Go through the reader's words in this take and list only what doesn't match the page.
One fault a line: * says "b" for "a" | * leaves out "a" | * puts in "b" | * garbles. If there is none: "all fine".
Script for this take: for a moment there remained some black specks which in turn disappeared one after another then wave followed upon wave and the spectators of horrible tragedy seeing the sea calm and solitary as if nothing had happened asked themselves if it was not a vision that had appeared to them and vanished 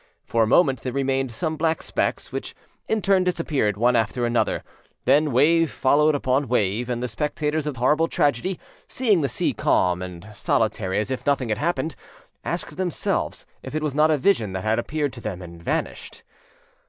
all fine